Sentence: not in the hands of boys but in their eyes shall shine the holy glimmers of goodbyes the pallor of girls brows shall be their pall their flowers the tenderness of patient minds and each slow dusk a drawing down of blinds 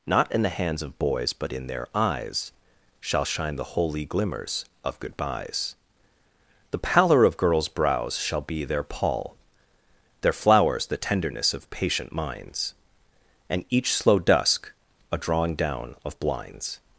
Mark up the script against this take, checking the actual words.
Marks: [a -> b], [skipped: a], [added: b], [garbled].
not in the hands of boys but in their eyes shall shine the holy glimmers of goodbyes the pallor of girls brows shall be their pall their flowers the tenderness of patient minds and each slow dusk a drawing down of blinds